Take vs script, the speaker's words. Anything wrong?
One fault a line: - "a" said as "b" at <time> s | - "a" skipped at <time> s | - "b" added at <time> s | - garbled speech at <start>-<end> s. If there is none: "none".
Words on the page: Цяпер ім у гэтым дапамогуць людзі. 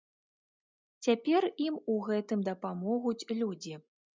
none